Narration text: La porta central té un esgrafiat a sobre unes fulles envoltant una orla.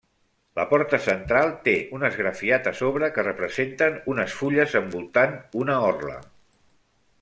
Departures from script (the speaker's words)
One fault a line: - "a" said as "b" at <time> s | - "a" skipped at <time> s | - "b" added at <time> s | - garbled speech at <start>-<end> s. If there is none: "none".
- "que representen" added at 3.2 s